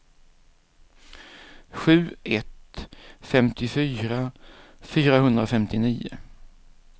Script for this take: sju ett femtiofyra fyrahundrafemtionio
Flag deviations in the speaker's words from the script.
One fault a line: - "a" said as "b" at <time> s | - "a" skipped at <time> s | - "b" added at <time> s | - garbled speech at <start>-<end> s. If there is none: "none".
none